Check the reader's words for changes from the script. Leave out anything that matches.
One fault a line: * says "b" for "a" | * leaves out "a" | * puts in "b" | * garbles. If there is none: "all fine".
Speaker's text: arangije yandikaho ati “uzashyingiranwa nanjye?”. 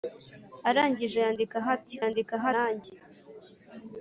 * says "yandikaho" for "uzashyingiranwa"